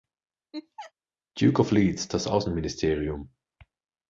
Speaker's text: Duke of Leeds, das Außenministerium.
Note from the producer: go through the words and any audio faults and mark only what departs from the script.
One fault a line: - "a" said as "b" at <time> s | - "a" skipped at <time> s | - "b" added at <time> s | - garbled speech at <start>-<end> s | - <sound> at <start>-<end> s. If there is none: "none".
- laugh at 0.5-0.9 s